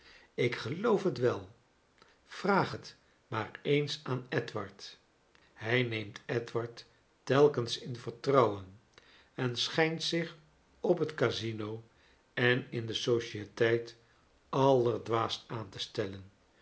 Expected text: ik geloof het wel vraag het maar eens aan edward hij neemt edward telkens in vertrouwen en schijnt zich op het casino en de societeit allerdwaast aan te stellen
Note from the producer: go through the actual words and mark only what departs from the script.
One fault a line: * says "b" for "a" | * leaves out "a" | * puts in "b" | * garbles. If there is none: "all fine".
* puts in "in"